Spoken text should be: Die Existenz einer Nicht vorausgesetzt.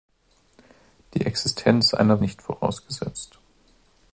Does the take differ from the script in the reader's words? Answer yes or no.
no